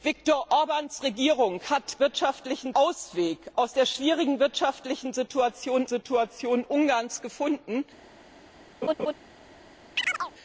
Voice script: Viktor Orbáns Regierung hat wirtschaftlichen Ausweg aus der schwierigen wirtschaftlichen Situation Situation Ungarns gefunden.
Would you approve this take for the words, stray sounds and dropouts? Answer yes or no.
no